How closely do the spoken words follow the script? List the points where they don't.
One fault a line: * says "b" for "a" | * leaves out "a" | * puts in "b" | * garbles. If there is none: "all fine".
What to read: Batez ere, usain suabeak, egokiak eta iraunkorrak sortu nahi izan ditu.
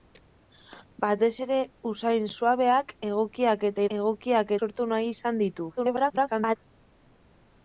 * says "egokiak" for "iraunkorrak"
* garbles